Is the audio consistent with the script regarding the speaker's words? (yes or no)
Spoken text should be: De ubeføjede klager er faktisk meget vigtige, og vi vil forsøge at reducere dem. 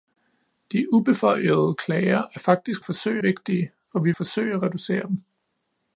no